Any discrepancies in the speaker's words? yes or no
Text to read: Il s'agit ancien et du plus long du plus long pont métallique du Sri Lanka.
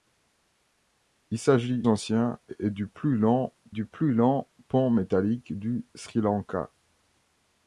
no